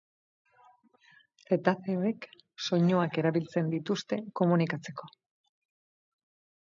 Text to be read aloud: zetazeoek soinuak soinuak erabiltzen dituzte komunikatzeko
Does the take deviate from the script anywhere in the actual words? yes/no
yes